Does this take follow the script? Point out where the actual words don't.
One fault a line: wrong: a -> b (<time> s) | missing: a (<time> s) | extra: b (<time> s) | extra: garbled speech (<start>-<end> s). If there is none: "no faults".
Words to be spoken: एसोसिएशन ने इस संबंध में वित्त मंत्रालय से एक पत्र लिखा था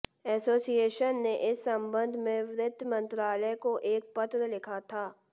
wrong: से -> को (3.6 s)